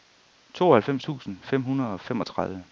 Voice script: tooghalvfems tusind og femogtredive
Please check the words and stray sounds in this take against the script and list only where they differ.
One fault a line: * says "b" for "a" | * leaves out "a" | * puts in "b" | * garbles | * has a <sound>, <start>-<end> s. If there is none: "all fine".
* puts in "fem hundrede"